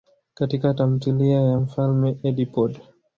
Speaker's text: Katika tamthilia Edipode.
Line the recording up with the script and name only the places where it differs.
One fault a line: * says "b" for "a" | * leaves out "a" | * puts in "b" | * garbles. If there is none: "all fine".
* puts in "ya Mfalme"